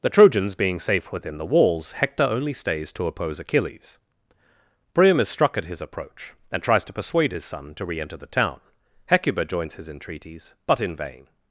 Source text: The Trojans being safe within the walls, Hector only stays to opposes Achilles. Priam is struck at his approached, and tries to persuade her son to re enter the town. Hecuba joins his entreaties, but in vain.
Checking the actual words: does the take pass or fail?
fail